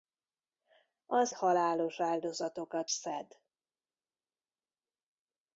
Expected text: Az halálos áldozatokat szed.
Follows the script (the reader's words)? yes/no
yes